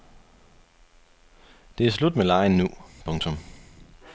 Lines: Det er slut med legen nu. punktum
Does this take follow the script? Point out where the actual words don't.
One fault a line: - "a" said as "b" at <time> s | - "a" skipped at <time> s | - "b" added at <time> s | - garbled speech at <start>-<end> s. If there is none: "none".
none